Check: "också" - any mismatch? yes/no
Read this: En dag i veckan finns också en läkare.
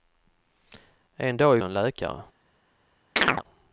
yes